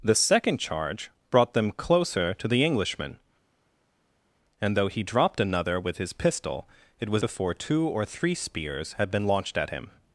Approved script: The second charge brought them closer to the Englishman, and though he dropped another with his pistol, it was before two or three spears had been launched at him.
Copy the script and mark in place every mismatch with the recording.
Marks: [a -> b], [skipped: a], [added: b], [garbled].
The second charge brought them closer to the Englishman, and though he dropped another with his pistol, it was before two or three spears had been launched at him.